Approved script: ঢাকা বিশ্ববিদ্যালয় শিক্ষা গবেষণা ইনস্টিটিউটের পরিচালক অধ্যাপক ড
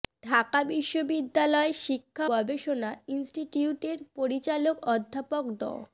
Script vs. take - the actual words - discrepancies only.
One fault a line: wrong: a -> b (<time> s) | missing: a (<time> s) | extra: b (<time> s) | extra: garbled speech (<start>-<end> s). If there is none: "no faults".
no faults